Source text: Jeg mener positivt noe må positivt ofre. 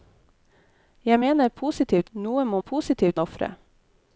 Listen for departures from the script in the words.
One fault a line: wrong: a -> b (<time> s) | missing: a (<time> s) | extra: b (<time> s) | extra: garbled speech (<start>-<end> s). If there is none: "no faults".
no faults